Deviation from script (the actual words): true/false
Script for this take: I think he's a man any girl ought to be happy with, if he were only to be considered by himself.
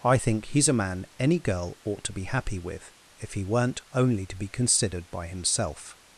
true